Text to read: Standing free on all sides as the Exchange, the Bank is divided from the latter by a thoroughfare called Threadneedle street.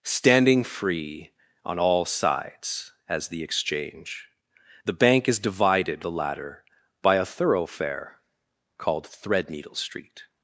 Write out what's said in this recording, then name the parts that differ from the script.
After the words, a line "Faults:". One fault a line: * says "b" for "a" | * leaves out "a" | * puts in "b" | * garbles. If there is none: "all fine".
Standing free on all sides as the Exchange, the Bank is divided the latter by a thoroughfare called Threadneedle street.
Faults:
* leaves out "from"